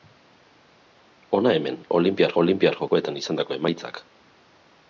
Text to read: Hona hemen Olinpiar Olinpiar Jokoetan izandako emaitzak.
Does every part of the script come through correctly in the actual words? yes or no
yes